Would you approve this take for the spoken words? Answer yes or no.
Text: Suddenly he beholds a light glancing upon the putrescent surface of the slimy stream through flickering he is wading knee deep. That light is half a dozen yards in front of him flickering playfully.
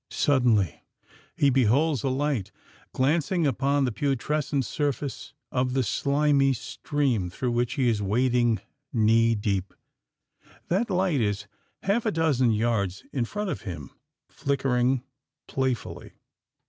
no